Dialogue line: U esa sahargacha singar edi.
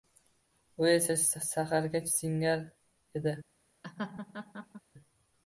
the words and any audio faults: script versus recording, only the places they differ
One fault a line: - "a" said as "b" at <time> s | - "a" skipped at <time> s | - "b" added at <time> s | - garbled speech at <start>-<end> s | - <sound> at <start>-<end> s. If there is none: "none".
- laugh at 3.8-4.8 s